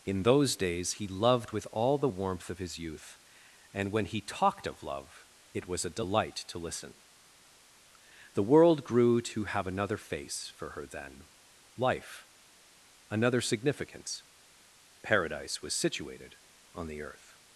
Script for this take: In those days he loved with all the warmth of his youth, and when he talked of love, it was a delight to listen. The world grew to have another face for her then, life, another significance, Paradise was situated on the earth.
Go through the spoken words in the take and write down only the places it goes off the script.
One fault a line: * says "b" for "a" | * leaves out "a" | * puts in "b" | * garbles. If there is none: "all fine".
all fine